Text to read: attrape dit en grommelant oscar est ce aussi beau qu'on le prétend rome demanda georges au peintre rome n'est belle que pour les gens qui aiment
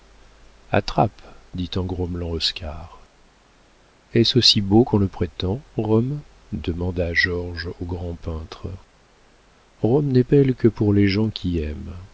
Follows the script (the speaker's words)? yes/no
no